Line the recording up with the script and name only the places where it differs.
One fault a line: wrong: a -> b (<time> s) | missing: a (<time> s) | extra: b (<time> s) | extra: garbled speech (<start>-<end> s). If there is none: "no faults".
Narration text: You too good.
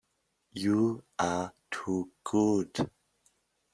extra: are (1.2 s)